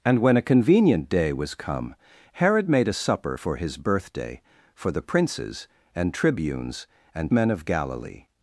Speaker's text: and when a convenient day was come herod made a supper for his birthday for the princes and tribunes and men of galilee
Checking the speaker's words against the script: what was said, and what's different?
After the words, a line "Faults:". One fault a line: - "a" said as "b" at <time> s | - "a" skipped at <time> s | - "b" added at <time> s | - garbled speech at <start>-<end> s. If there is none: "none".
and when a convenient day was come herod made a supper for his birthday for the princes and tribunes and men of galilee
Faults:
none